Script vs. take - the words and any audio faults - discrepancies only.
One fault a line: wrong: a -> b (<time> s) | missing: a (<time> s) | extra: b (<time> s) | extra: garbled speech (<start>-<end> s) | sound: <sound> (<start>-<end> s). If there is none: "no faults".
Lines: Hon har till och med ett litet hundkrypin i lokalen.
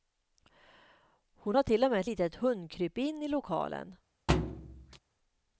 sound: thud (4.3-5.0 s)